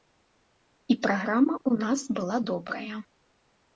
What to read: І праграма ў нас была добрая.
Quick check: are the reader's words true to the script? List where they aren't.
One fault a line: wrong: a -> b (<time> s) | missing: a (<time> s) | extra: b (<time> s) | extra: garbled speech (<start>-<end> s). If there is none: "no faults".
no faults